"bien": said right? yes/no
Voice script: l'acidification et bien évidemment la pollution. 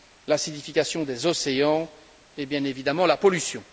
yes